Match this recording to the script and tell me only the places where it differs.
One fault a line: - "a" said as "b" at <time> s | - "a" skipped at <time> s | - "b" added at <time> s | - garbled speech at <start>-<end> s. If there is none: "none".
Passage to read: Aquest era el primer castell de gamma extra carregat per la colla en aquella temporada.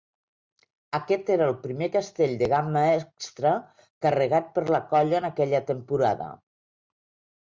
none